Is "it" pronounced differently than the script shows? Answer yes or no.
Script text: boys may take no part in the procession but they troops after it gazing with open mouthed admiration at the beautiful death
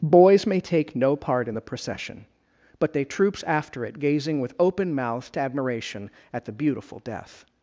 no